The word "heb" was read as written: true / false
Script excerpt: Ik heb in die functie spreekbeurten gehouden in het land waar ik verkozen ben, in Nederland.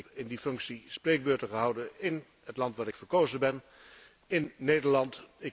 false